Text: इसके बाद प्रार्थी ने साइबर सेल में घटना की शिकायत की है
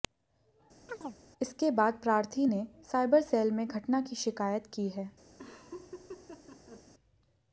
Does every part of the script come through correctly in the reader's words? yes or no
yes